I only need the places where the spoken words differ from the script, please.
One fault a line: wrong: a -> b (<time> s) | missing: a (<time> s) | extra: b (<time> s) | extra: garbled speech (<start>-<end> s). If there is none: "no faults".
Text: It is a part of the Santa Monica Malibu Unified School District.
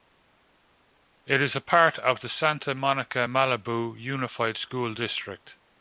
no faults